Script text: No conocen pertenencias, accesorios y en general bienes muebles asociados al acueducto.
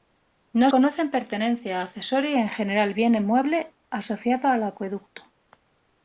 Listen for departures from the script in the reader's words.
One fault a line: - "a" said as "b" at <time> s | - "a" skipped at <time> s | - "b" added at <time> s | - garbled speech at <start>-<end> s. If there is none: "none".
none